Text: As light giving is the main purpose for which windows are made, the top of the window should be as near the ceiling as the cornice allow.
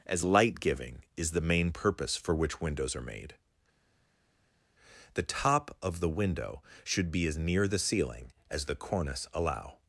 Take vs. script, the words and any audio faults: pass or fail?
pass